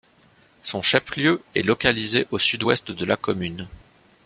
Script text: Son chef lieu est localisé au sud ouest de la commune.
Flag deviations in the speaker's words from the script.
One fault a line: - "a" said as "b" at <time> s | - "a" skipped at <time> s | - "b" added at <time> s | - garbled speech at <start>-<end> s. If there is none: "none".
none